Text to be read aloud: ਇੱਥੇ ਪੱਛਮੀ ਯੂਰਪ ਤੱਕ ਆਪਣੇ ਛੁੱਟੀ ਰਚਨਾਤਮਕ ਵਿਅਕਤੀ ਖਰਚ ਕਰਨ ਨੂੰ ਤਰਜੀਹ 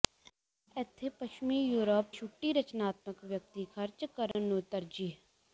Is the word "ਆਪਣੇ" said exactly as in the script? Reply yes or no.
no